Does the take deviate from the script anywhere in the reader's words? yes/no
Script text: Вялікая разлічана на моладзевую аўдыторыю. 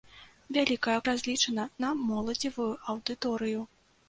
no